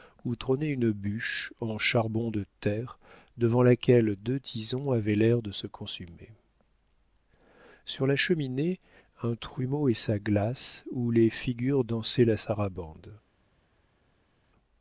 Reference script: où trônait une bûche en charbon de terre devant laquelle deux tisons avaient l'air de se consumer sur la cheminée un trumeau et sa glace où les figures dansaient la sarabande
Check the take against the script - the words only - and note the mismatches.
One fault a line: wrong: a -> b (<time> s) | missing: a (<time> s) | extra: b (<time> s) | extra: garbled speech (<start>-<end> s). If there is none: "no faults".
no faults